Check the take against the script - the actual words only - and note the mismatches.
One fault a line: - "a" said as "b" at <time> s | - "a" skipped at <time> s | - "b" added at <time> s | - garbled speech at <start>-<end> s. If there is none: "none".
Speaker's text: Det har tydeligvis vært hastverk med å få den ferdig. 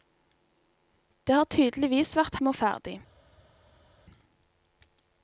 - "hastverk" skipped at 2.4 s
- "få den" skipped at 2.6 s